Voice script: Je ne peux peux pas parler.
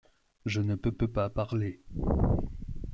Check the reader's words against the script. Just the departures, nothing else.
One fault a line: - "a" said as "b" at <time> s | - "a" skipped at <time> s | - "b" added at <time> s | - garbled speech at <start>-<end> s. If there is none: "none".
none